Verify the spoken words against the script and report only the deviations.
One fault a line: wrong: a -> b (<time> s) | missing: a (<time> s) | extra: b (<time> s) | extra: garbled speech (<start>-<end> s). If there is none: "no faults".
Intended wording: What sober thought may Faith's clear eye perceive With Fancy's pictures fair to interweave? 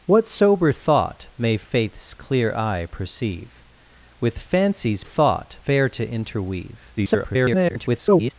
wrong: pictures -> thought (5.0 s)
extra: garbled speech (7.0-8.3 s)